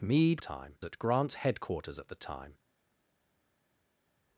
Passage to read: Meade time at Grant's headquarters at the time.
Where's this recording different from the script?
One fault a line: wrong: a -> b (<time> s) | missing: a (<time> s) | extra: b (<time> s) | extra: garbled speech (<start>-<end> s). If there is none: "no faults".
no faults